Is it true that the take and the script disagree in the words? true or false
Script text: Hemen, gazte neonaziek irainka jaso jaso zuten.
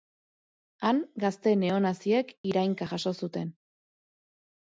true